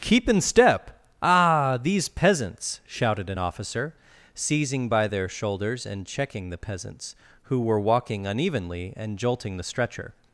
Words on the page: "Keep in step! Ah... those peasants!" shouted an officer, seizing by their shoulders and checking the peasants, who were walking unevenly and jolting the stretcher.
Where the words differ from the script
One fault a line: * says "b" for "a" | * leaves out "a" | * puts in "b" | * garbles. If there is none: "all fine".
* says "these" for "those"